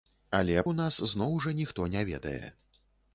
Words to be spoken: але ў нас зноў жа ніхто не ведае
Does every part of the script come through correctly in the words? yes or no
yes